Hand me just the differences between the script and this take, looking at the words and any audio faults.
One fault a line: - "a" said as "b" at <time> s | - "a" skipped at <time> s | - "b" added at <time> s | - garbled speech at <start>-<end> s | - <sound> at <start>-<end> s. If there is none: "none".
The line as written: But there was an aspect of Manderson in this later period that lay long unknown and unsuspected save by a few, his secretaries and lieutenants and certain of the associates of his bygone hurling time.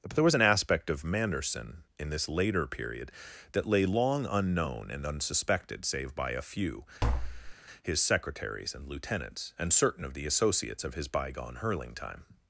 - tap at 7.0-7.6 s